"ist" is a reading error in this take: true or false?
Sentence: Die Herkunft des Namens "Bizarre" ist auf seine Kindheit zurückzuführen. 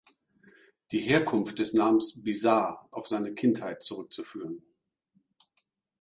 true